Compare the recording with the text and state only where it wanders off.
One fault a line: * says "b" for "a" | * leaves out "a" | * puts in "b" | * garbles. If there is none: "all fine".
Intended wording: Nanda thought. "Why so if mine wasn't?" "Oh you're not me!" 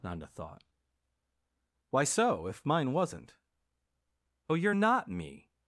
all fine